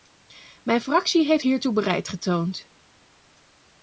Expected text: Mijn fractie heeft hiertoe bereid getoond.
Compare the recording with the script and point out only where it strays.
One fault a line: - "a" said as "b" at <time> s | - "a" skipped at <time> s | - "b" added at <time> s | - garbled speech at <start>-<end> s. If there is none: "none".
none